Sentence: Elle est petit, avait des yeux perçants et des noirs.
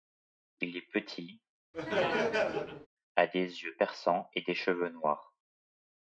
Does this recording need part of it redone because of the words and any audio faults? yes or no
yes